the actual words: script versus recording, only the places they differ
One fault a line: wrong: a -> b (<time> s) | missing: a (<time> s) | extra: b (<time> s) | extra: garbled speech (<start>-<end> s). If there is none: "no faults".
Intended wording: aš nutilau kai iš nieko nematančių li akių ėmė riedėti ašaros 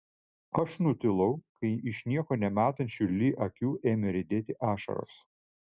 no faults